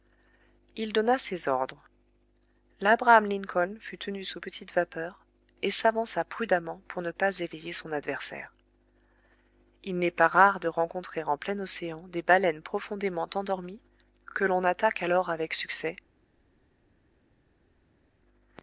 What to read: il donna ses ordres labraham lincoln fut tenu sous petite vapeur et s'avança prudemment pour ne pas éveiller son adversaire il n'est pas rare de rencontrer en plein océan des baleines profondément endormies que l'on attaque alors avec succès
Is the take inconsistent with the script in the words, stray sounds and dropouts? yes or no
no